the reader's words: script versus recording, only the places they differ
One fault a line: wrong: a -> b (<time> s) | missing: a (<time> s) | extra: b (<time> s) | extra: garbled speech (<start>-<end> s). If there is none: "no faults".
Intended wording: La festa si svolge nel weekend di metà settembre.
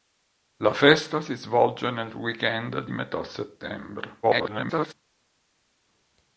extra: garbled speech (4.2-4.9 s)